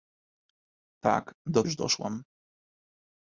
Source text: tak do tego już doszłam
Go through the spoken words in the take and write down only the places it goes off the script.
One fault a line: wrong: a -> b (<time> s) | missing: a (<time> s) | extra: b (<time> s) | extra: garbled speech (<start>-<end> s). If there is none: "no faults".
missing: tego (1.6 s)